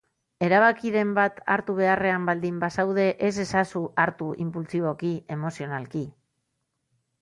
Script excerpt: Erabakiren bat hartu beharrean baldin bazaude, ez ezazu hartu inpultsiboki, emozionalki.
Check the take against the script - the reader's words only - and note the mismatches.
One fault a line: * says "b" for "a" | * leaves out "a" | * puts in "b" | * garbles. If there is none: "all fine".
all fine